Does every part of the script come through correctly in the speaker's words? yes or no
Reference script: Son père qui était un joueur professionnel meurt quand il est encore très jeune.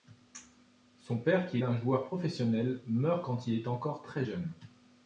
no